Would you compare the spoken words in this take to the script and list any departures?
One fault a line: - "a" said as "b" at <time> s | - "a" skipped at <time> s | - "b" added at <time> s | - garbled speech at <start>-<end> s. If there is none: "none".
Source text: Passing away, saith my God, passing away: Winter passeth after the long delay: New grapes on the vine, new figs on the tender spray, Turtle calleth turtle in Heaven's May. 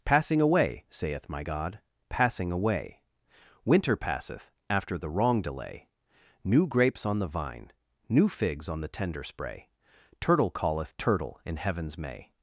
- "long" said as "wrong" at 5.1 s